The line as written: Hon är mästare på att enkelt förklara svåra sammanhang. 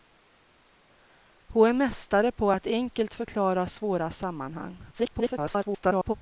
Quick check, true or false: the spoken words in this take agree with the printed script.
false